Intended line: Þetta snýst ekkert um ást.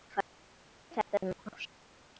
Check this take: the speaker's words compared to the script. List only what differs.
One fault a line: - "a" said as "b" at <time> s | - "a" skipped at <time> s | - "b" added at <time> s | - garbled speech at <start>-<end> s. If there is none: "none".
- "snýst ekkert" skipped at 1.2 s